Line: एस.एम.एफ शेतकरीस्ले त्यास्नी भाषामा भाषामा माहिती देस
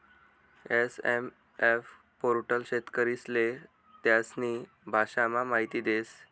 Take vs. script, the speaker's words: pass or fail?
fail